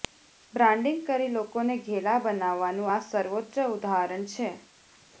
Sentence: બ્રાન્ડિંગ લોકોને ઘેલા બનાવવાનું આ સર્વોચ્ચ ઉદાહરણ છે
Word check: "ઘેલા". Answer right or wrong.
right